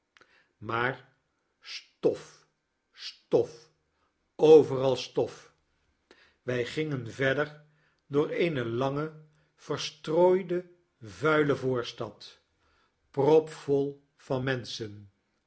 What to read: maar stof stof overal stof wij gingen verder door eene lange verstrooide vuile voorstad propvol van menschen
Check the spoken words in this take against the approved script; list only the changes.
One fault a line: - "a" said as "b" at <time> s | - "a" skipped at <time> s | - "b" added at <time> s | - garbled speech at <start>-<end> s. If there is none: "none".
none